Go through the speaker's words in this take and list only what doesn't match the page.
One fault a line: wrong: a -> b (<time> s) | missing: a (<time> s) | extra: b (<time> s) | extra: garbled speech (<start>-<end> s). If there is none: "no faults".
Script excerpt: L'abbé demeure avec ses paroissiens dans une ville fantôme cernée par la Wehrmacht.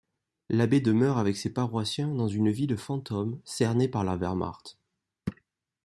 no faults